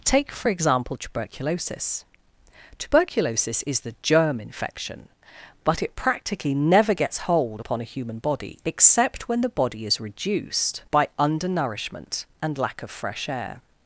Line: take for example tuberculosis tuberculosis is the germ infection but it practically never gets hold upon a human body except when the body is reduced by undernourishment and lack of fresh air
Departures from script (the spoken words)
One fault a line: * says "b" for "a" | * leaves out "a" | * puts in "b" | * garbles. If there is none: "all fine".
all fine